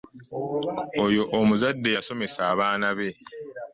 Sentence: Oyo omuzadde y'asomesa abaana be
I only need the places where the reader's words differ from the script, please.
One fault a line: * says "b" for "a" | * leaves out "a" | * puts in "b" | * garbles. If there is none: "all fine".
all fine